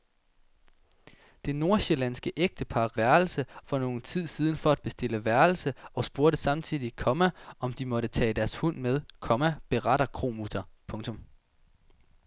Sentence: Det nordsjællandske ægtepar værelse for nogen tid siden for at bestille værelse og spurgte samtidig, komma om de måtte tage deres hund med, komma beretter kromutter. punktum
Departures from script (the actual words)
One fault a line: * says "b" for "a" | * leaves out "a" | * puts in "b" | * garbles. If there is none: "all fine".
all fine